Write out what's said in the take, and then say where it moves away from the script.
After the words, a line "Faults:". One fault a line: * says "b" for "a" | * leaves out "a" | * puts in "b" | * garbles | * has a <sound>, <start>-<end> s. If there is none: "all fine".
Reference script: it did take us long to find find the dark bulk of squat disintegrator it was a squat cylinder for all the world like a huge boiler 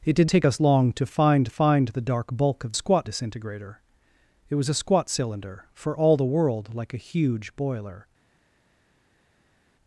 it did take us long to find find the dark bulk of squat disintegrator it was a squat cylinder for all the world like a huge boiler
Faults:
all fine